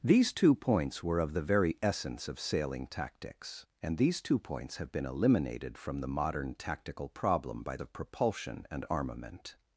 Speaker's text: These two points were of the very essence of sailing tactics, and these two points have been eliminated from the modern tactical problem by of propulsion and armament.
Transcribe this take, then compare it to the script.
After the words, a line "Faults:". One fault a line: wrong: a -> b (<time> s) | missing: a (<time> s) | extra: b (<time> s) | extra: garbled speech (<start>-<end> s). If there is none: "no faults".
These two points were of the very essence of sailing tactics, and these two points have been eliminated from the modern tactical problem by of propulsion and armament.
Faults:
no faults